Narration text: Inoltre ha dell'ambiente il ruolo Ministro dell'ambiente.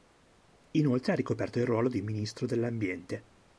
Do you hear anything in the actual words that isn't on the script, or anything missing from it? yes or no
yes